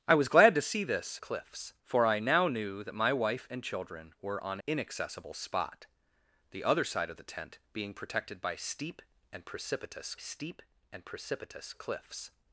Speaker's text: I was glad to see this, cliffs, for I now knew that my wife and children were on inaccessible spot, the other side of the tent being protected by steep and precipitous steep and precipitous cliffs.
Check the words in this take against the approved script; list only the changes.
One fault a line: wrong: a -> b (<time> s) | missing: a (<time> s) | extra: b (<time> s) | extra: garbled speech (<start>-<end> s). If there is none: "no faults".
no faults